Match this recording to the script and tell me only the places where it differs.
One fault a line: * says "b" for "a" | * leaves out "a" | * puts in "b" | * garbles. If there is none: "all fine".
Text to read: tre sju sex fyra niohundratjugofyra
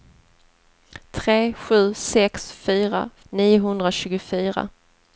all fine